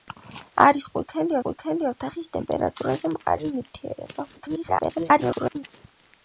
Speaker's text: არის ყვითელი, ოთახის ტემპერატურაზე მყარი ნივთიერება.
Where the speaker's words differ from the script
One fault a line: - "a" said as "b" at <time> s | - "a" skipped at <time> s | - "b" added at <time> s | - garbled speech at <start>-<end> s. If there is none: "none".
- "ყვითელი" added at 1.5 s
- garbled speech at 4.4-5.6 s